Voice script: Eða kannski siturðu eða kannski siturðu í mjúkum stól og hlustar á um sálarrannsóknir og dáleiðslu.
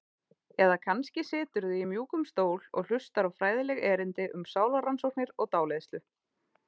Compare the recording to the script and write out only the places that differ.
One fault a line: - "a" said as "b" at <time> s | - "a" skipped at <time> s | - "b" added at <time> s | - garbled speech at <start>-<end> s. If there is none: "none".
- "eða kannski siturðu" skipped at 1.8 s
- "fræðileg erindi" added at 3.4 s